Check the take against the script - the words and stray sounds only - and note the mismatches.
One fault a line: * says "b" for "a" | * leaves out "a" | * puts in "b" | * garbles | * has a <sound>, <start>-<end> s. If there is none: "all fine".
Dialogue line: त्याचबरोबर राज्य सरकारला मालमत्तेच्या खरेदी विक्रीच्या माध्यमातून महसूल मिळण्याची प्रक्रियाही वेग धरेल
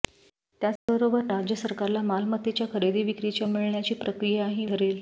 * has a dropout, 0.8-0.9 s
* leaves out "माध्यमातून महसूल"
* leaves out "वेग"